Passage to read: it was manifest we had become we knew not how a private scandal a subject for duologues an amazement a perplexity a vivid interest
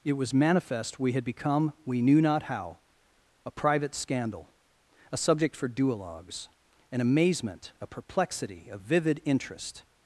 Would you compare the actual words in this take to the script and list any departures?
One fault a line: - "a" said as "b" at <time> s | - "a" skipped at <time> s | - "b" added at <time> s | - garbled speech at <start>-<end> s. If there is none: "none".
none